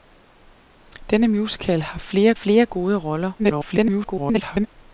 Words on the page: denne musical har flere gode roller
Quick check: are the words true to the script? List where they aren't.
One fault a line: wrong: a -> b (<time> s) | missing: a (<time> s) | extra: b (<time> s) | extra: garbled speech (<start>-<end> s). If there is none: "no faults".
extra: flere (2.3 s)
extra: garbled speech (3.4-4.7 s)